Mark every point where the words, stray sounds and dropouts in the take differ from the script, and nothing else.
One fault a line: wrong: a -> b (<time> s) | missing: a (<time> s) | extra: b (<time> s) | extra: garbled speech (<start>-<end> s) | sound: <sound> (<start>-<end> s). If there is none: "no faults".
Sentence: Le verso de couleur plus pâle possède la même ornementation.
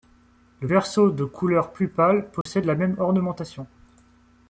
sound: dropout (2.4-2.5 s)